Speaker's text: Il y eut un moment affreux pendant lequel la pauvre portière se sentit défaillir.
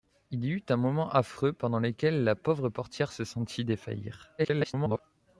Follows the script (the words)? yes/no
no